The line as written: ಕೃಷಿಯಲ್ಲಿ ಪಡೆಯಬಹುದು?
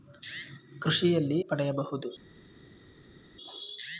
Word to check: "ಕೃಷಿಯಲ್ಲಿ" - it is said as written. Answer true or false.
true